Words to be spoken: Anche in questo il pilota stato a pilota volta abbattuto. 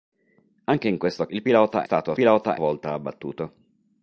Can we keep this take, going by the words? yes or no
yes